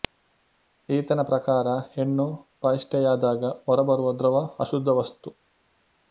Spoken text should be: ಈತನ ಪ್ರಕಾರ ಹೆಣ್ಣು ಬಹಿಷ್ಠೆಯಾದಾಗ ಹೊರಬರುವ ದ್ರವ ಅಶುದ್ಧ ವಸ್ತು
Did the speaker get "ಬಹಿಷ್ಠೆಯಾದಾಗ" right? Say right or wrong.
right